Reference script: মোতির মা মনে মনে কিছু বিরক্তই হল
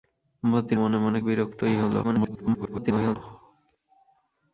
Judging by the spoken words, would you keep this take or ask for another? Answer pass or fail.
fail